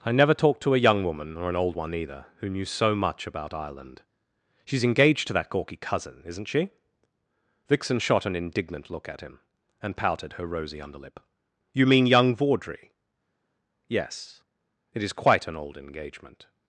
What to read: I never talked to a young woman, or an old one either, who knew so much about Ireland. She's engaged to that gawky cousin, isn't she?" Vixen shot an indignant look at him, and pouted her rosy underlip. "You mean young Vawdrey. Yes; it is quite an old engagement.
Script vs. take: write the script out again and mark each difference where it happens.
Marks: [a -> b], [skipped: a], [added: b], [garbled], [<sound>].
I never talked to a young woman, or an old one either, who knew so much about Ireland. She's engaged to that gawky cousin, isn't she?" Vixen shot an indignant look at him, and pouted her rosy underlip. "You mean young Vawdrey. Yes; it is quite an old engagement.